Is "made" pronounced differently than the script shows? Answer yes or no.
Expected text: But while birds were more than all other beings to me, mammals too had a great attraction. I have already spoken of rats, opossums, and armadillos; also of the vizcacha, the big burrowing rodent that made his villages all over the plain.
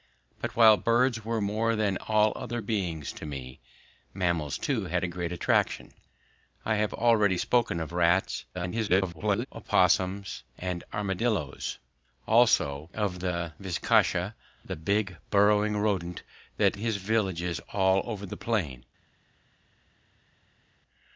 yes